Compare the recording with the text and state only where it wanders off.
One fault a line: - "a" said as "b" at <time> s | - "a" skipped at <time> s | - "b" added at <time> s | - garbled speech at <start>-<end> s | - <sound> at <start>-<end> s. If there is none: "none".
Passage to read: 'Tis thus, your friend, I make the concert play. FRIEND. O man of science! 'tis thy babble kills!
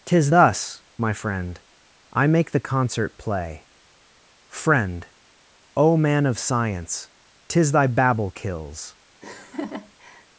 - "your" said as "my" at 1.0 s
- laugh at 9.2-10.3 s